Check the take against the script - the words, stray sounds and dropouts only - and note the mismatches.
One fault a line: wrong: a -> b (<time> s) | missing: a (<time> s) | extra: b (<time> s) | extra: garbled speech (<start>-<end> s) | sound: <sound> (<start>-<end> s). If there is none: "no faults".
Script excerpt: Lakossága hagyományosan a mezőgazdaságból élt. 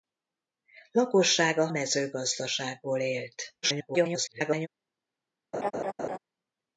missing: hagyományosan a (1.7 s)
extra: garbled speech (3.6-4.7 s)
sound: laugh (5.5-6.2 s)